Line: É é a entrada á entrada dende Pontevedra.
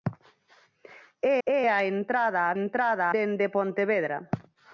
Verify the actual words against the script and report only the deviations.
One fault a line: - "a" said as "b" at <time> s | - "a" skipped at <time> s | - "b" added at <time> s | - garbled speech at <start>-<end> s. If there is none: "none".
none